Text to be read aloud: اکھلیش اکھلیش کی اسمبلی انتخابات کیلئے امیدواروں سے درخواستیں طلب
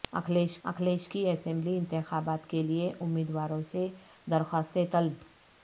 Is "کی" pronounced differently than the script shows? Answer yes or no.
no